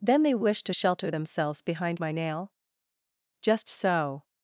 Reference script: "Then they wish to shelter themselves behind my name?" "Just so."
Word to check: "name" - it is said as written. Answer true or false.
false